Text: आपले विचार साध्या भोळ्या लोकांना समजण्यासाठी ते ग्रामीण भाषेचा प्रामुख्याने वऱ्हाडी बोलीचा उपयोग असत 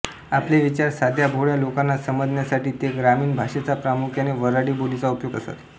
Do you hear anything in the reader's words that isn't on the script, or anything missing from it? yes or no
no